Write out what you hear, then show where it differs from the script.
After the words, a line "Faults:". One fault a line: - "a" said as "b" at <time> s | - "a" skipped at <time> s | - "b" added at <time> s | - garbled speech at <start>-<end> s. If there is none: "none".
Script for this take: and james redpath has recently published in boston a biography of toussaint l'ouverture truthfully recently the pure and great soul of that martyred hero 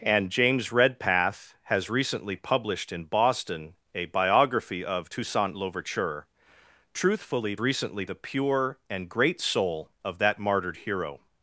and james redpath has recently published in boston a biography of toussaint l'ouverture truthfully recently the pure and great soul of that martyred hero
Faults:
none